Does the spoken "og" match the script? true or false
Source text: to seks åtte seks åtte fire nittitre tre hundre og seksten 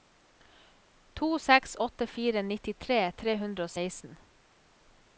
true